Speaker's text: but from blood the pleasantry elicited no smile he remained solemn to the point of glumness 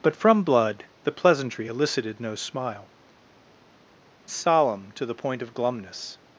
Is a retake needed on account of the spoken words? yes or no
yes